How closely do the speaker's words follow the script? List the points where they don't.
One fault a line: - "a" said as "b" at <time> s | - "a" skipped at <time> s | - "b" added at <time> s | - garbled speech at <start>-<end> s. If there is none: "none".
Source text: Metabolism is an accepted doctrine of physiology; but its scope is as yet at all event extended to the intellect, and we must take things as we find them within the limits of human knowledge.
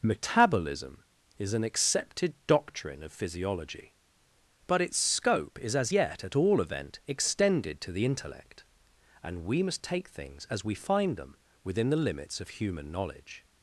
none